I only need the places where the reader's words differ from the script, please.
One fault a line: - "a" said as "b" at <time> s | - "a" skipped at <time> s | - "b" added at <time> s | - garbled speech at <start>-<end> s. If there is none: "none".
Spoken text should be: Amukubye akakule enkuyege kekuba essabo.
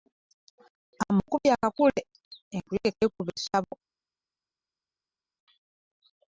none